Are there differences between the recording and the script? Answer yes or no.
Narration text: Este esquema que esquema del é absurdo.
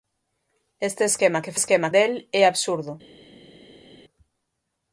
no